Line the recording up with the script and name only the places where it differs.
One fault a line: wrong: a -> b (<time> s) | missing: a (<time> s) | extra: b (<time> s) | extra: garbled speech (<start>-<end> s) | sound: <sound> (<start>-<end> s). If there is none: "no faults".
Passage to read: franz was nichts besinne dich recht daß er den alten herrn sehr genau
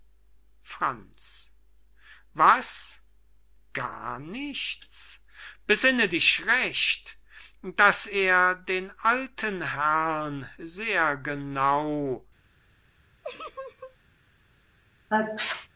extra: gar (3.7 s)
sound: laugh (13.2-14.0 s)
sound: sneeze (15.1-15.7 s)